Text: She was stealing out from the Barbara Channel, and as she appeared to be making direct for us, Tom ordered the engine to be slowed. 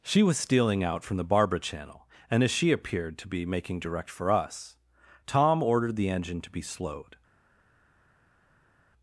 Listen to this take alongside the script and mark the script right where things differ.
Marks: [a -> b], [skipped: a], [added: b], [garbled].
She was stealing out from the Barbara Channel, and as she appeared to be making direct for us, Tom ordered the engine to be slowed.